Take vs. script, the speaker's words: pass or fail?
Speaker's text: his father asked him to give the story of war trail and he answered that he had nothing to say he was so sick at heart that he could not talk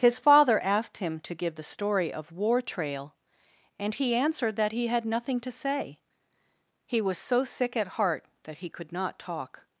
pass